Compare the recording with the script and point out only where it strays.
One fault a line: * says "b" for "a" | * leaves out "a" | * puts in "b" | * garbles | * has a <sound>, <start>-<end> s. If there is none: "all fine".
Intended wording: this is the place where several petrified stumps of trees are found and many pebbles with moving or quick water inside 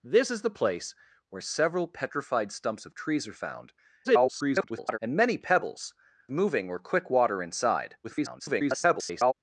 * garbles
* leaves out "with"
* garbles